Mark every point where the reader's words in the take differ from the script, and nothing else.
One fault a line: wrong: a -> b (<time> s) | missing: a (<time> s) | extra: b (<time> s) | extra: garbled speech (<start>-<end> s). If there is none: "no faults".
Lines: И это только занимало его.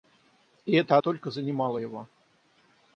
no faults